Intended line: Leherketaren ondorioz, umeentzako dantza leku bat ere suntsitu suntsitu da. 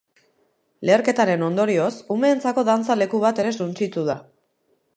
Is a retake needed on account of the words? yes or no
yes